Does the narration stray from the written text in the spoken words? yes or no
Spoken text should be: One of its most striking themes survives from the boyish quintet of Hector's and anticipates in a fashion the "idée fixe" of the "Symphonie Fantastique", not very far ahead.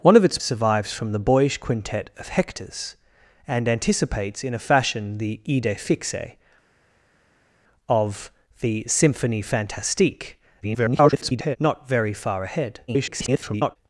yes